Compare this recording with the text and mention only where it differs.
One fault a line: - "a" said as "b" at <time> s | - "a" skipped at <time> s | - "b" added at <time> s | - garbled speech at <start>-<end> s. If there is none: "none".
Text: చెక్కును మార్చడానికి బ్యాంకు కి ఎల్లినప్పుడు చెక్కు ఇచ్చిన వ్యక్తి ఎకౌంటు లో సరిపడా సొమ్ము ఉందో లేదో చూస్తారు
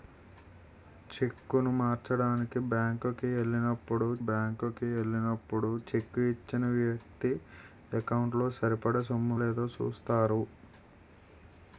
- "బ్యాంకు కి ఎల్లినప్పుడు" added at 4.3 s
- "ఉందో" skipped at 9.3 s